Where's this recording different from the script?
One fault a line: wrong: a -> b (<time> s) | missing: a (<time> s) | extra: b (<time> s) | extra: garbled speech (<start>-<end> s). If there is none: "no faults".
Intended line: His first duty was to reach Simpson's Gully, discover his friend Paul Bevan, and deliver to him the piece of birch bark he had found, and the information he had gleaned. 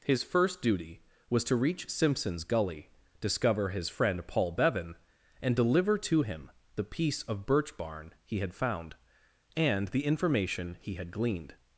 wrong: bark -> barn (7.8 s)